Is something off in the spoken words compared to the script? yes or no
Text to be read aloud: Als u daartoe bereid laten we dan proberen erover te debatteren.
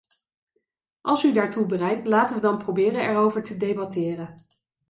no